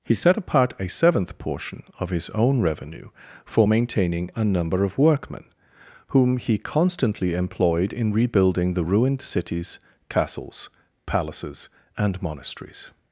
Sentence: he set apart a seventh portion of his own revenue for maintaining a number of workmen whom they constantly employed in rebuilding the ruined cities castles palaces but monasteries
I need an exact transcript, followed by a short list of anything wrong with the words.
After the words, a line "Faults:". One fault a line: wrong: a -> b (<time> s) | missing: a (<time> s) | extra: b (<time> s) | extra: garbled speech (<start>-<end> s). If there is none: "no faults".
he set apart a seventh portion of his own revenue for maintaining a number of workmen whom he constantly employed in rebuilding the ruined cities castles palaces and monasteries
Faults:
wrong: they -> he (6.4 s)
wrong: but -> and (12.0 s)